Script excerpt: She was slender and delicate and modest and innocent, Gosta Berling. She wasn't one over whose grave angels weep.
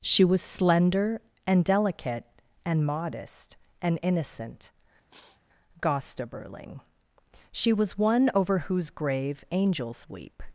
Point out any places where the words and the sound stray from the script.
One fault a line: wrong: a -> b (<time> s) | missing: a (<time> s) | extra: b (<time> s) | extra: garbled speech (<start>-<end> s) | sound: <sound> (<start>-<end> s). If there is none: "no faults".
sound: sniff (5.1-5.4 s)
wrong: wasn't -> was (7.7 s)